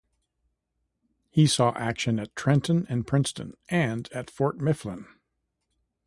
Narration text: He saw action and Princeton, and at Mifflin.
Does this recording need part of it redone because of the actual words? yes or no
yes